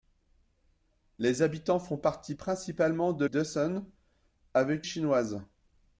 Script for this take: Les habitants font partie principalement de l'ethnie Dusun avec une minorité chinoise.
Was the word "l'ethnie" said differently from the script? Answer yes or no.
yes